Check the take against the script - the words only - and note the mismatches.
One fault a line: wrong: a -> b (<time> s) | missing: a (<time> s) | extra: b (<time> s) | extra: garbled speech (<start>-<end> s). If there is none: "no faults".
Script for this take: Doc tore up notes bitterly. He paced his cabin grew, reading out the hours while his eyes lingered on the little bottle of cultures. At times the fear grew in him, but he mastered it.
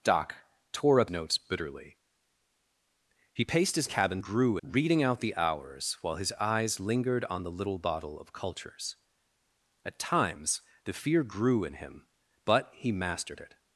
no faults